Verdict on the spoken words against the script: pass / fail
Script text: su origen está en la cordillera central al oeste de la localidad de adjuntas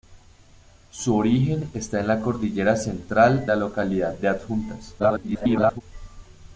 fail